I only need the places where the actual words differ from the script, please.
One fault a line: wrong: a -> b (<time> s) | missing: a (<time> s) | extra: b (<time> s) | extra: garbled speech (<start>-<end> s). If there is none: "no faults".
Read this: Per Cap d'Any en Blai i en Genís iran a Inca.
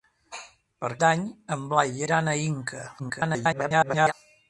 missing: Cap (0.9 s)
missing: en Genís (2.1 s)
extra: garbled speech (3.0-4.1 s)